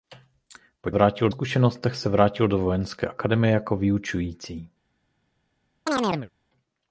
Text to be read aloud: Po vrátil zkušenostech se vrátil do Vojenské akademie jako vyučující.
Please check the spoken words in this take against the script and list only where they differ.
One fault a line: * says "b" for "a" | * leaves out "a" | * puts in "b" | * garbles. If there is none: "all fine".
all fine